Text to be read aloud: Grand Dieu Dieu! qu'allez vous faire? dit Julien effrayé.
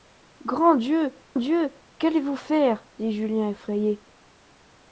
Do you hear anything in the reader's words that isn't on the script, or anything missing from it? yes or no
no